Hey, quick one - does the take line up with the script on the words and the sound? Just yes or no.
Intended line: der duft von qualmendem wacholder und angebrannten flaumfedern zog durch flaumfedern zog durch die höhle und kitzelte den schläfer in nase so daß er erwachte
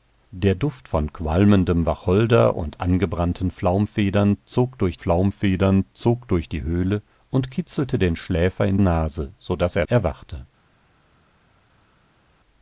yes